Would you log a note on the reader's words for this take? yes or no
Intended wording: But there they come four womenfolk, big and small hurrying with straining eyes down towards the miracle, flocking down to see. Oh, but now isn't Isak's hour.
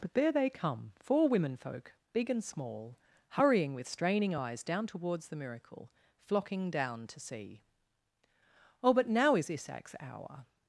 yes